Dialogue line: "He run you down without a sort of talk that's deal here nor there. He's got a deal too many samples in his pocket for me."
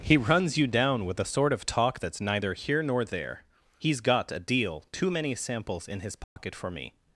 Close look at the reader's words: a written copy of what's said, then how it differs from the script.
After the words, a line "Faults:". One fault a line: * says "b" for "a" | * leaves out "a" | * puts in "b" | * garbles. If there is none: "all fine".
"He runs you down with a sort of talk that's neither here nor there. He's got a deal too many samples in his pocket for me."
Faults:
* says "runs" for "run"
* says "with" for "without"
* says "neither" for "deal"